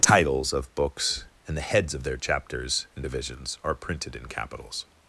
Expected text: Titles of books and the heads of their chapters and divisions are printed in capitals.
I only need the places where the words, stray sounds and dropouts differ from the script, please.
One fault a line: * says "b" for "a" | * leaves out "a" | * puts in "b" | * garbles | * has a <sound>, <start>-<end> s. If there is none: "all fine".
all fine